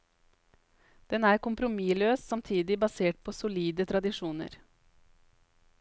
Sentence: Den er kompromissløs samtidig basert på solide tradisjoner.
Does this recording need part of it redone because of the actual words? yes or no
no